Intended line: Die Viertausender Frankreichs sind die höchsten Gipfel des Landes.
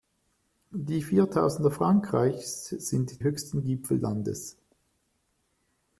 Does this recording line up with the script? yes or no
no